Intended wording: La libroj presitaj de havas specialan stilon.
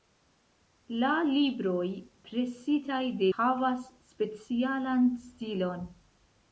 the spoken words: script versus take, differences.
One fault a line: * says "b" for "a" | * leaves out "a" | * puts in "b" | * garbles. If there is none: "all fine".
all fine